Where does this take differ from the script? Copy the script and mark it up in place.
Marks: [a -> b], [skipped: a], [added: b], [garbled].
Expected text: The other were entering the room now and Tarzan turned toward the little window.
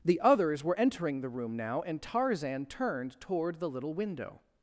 The [other -> others] were entering the room now and Tarzan turned toward the little window.